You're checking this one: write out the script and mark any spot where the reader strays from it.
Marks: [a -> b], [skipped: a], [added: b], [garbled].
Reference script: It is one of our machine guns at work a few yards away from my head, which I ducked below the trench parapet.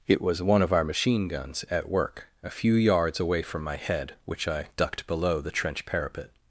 It [is -> was] one of our machine guns at work a few yards away from my head, which I ducked below the trench parapet.